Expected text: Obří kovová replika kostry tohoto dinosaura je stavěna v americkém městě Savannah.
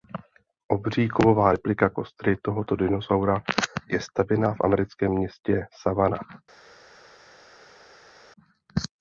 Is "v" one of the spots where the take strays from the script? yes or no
no